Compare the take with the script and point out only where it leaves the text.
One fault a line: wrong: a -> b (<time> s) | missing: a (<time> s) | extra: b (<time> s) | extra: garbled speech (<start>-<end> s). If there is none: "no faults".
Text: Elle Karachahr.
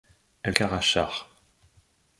no faults